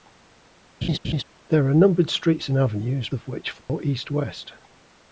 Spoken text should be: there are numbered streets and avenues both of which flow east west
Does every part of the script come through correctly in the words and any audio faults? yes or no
no